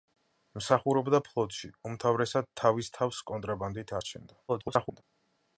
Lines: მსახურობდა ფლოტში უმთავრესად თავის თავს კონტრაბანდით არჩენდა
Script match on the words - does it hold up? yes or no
no